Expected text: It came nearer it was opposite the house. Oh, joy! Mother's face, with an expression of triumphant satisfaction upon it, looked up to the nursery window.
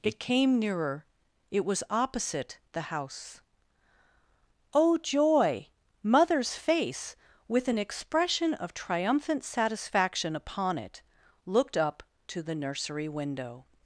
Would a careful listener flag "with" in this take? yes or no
no